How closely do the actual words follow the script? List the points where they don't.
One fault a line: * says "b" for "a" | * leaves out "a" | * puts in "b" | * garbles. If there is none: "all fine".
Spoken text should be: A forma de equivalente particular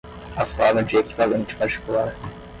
all fine